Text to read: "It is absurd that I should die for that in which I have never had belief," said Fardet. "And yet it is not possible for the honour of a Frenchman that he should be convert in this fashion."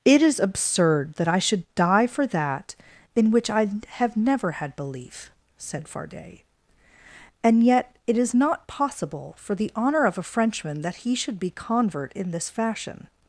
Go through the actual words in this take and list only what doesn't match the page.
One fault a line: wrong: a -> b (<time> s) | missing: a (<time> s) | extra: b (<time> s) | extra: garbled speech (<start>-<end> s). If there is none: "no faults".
no faults